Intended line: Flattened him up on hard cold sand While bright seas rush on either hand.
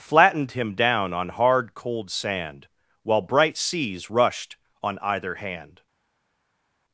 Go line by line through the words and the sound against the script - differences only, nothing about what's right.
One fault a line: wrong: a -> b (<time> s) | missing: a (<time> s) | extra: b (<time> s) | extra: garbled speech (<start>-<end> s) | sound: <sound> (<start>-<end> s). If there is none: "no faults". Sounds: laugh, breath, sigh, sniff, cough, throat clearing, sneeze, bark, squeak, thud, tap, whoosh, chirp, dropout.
wrong: up -> down (0.7 s)
wrong: rush -> rushed (4.1 s)